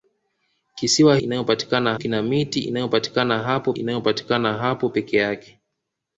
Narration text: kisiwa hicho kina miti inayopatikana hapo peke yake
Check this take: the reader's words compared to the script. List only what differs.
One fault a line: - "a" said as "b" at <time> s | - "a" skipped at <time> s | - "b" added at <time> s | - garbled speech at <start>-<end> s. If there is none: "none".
- "hicho" said as "inayopatikana" at 1.2 s
- "inayopatikana hapo" added at 3.7 s